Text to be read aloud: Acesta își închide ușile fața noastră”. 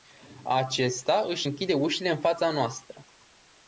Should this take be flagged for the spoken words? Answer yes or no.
yes